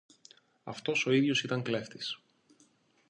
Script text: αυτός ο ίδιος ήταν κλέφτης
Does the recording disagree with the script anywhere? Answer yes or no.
no